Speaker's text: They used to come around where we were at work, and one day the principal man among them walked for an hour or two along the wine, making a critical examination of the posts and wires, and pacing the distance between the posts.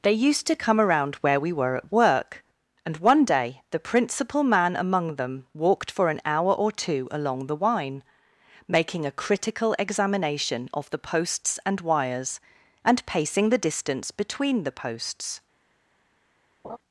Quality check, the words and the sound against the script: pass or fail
fail